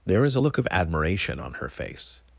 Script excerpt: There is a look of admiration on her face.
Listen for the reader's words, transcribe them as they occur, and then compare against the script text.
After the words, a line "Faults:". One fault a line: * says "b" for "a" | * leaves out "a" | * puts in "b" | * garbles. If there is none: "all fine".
There is a look of admiration on her face.
Faults:
all fine